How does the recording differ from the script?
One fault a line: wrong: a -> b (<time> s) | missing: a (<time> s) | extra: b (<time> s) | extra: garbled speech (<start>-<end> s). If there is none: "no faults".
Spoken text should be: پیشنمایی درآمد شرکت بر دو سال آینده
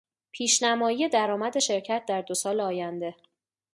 wrong: بر -> در (2.1 s)